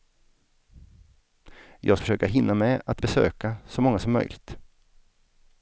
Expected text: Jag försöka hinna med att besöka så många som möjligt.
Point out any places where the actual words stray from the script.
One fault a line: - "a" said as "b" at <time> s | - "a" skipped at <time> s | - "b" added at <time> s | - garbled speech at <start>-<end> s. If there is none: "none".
none